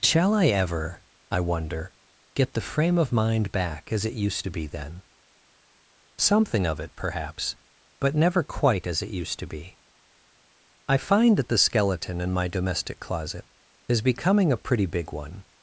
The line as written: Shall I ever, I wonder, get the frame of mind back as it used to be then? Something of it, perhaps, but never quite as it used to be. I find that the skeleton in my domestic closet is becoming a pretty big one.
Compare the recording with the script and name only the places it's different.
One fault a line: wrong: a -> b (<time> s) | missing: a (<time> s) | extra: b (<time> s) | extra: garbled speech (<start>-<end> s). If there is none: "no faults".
no faults